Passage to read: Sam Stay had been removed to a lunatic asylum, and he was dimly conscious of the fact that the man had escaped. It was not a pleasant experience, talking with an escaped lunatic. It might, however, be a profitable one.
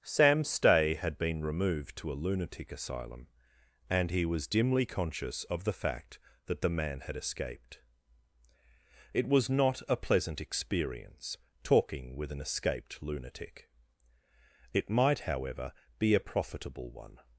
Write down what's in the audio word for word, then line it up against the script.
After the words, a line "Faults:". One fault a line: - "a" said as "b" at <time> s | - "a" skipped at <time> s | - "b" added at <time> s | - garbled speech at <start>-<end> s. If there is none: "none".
Sam Stay had been removed to a lunatic asylum, and he was dimly conscious of the fact that the man had escaped. It was not a pleasant experience, talking with an escaped lunatic. It might, however, be a profitable one.
Faults:
none